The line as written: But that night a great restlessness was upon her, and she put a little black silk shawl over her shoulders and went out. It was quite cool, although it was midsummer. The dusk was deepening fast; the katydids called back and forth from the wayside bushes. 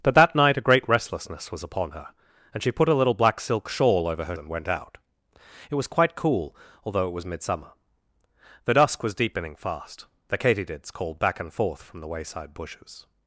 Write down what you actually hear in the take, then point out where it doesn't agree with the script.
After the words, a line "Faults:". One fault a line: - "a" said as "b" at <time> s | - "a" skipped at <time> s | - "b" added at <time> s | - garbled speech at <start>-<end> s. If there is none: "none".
But that night a great restlessness was upon her, and she put a little black silk shawl over her and went out. It was quite cool, although it was midsummer. The dusk was deepening fast; the katydids called back and forth from the wayside bushes.
Faults:
- "shoulders" skipped at 4.4 s